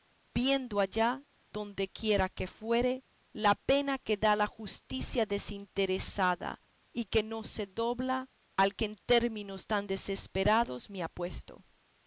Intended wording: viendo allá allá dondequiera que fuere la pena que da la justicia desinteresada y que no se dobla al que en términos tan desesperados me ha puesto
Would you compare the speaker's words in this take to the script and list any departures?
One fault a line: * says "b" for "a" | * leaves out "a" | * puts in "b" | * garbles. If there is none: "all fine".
* leaves out "allá"